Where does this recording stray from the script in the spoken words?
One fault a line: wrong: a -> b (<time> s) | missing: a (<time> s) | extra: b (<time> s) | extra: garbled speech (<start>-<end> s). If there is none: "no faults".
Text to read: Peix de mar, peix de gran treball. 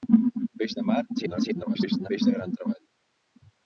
extra: garbled speech (1.1-2.1 s)